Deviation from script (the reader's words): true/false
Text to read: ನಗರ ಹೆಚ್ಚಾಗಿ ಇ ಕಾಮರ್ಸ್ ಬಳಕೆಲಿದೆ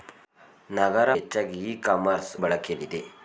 false